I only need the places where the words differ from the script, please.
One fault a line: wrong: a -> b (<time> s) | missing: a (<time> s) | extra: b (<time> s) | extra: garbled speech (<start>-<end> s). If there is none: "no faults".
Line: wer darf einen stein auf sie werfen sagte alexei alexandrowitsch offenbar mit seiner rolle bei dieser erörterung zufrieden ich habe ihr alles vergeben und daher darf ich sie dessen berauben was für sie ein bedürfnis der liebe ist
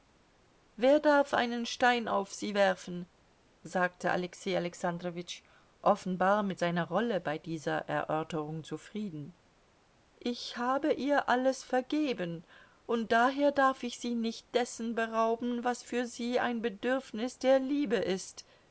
extra: nicht (14.2 s)